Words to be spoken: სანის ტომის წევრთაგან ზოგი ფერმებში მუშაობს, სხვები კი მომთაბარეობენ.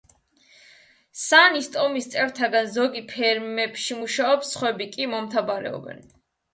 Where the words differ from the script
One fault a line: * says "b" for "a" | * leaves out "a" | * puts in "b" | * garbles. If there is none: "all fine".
all fine